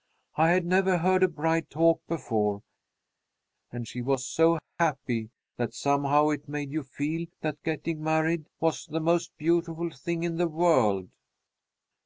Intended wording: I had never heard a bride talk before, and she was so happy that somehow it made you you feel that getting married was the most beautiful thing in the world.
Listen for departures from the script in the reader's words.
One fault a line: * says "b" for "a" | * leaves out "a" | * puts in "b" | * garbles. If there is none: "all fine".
* leaves out "you"